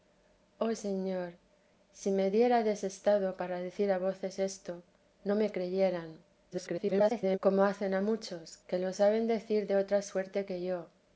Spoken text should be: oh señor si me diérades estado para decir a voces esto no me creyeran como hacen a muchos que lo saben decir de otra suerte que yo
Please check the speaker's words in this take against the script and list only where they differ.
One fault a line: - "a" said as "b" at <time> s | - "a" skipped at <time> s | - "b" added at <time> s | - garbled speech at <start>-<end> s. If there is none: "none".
- garbled speech at 6.5-7.4 s